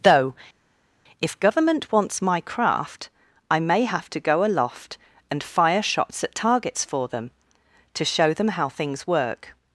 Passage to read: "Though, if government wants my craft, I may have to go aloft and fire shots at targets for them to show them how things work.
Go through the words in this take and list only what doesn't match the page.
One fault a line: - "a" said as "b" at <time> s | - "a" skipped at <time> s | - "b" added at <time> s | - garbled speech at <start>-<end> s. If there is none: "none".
none